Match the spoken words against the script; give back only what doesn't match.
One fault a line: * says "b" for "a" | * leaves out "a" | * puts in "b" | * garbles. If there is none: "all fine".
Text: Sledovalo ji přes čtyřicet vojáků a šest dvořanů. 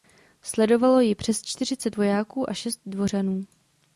all fine